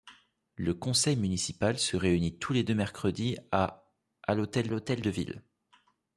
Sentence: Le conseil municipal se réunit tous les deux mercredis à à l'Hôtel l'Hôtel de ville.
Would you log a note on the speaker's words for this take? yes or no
no